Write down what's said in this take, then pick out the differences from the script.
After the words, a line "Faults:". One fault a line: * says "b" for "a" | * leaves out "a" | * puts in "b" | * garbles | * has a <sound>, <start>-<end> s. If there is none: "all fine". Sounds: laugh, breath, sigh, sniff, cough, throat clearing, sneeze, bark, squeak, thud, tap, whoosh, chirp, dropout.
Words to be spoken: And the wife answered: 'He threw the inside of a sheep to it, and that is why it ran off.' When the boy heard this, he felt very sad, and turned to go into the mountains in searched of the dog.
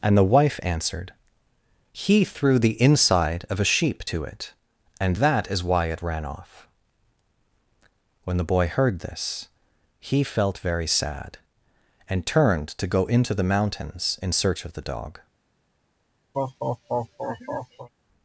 And the wife answered: 'He threw the inside of a sheep to it, and that is why it ran off.' When the boy heard this, he felt very sad, and turned to go into the mountains in search of the dog.
Faults:
* says "search" for "searched"
* has a laugh, 16.3-17.9 s